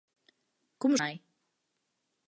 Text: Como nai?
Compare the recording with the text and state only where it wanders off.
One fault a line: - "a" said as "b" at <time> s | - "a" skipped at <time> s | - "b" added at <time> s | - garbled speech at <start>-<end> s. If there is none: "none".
none